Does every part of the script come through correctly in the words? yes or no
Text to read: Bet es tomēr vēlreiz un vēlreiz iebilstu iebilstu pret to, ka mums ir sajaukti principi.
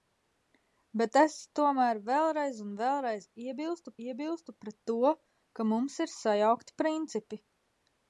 yes